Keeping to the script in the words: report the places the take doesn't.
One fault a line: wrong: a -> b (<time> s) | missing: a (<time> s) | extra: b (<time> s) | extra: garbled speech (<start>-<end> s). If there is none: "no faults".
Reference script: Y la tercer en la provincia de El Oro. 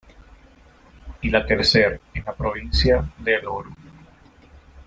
no faults